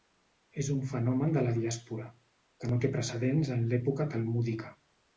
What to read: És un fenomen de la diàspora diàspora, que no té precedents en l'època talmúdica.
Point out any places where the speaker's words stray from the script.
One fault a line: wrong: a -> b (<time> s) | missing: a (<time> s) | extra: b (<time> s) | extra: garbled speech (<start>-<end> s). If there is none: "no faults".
missing: diàspora (2.1 s)